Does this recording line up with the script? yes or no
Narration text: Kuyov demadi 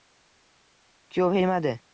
yes